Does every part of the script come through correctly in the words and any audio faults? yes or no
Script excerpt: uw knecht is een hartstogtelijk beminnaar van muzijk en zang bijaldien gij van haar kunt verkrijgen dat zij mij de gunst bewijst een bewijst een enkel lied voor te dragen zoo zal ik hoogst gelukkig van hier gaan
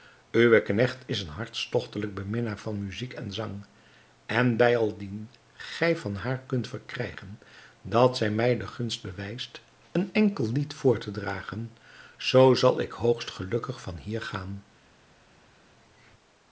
no